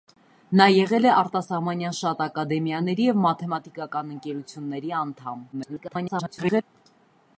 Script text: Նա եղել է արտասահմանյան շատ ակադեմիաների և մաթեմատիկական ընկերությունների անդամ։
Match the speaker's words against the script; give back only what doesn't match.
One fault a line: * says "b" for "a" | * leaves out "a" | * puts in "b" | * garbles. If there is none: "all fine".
* garbles